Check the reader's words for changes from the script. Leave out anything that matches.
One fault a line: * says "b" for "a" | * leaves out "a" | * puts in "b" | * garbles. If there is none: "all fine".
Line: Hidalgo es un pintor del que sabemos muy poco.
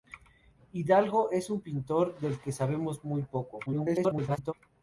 * garbles